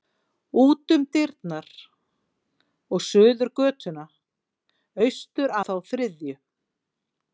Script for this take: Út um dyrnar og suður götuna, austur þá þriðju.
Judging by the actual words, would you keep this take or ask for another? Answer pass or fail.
pass